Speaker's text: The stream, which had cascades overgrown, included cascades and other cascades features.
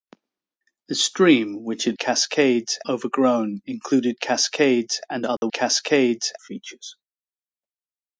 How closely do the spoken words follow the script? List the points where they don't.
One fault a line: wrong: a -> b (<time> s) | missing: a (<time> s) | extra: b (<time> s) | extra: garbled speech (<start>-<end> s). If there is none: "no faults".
no faults